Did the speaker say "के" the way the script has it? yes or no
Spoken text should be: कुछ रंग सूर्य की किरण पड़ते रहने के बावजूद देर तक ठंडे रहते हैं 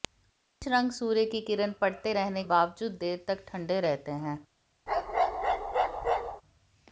no